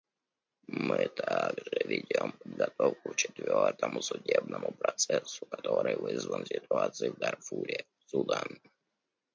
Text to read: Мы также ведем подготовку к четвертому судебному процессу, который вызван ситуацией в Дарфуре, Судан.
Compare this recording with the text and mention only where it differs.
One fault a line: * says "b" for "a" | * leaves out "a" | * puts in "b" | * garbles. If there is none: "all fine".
all fine